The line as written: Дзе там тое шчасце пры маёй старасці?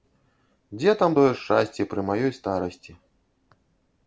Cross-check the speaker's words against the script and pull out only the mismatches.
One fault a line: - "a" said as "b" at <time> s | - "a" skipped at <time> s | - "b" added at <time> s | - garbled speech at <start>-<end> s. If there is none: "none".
none